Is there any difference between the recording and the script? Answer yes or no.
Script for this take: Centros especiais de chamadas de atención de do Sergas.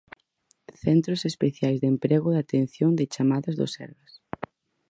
yes